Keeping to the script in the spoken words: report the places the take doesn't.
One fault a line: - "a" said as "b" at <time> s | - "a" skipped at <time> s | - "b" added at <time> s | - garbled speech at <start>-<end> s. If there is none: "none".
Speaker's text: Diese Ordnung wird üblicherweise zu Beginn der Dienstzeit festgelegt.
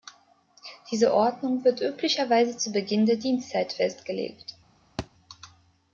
none